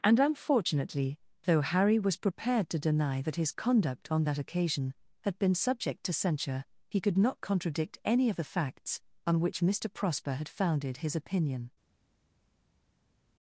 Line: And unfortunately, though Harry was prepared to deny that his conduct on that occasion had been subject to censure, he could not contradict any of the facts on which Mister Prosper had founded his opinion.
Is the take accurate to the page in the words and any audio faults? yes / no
yes